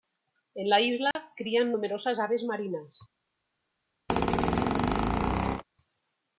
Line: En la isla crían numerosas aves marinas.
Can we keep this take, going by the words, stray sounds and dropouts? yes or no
no